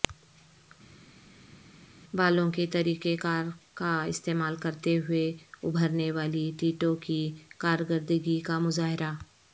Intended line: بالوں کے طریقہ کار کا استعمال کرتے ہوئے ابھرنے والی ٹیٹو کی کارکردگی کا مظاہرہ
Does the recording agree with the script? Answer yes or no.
yes